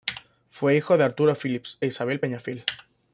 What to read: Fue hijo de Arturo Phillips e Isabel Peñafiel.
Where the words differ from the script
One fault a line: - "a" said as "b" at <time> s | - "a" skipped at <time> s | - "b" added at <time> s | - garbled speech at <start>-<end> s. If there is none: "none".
none